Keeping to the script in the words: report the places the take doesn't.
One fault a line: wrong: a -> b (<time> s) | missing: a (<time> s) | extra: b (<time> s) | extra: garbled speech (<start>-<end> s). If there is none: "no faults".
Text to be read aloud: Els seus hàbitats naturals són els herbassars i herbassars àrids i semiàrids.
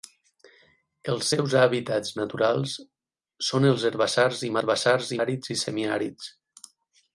no faults